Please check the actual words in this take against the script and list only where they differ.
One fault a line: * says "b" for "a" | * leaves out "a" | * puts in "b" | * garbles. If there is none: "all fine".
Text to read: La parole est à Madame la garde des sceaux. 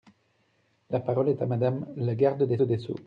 * puts in "des"